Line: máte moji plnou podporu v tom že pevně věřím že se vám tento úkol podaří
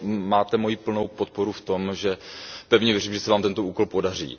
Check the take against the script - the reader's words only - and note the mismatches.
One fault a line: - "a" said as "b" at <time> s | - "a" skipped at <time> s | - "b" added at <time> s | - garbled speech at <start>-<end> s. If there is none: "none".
none